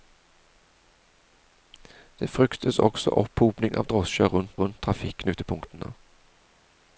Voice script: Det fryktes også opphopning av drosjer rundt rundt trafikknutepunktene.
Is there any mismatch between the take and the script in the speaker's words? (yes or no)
no